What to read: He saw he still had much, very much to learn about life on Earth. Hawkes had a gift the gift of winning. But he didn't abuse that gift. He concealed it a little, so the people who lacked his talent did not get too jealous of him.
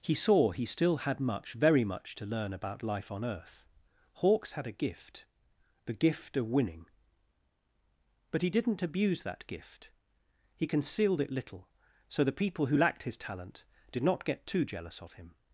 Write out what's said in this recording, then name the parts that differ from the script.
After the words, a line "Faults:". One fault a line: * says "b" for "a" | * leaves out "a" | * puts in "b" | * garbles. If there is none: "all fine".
He saw he still had much, very much to learn about life on Earth. Hawkes had a gift the gift of winning. But he didn't abuse that gift. He concealed it little, so the people who lacked his talent did not get too jealous of him.
Faults:
* leaves out "a"